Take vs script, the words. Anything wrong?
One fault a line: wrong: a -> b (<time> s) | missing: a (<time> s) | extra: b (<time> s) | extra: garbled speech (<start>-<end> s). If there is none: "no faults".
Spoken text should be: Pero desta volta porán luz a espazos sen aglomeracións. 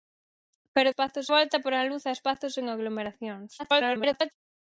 wrong: desta -> espazos (0.9 s)
extra: garbled speech (3.6-4.3 s)